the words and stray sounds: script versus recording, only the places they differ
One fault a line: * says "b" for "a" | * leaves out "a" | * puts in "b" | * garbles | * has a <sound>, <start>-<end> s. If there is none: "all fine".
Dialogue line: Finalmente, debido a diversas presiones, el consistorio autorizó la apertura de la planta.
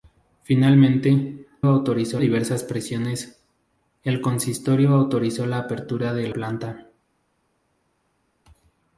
* says "autorizó" for "debido"
* leaves out "la"